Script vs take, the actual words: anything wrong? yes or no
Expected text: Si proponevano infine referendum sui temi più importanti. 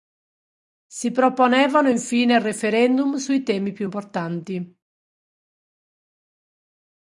no